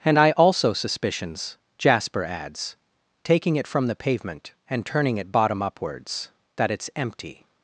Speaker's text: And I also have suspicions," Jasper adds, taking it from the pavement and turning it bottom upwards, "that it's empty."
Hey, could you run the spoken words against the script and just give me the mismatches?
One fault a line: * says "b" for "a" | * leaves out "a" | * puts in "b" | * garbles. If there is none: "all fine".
* leaves out "have"